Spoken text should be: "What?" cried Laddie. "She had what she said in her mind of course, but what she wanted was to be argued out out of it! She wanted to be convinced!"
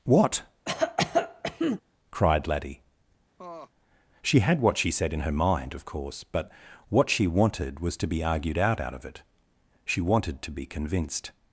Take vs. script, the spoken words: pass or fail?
pass